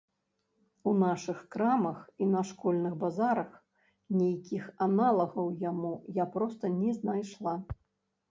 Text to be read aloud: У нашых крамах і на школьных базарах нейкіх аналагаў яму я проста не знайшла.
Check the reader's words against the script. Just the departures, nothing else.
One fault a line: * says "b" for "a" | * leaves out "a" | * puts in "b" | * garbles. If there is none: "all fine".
all fine